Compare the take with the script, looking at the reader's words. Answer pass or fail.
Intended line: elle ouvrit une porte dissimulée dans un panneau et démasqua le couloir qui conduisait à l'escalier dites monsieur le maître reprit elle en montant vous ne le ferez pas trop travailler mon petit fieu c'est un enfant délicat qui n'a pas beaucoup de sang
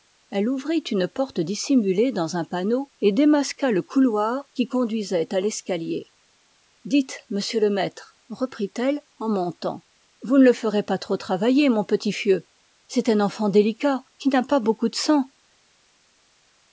pass